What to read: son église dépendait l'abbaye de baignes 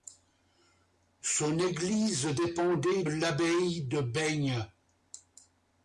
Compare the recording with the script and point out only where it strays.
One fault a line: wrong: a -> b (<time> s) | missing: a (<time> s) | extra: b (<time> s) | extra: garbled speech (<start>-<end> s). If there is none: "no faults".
no faults